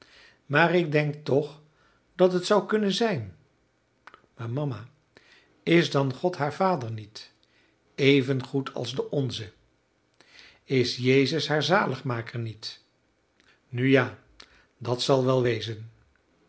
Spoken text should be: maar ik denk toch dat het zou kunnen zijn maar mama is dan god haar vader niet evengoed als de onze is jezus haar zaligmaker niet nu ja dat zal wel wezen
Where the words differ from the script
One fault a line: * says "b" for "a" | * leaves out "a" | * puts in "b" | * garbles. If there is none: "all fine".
all fine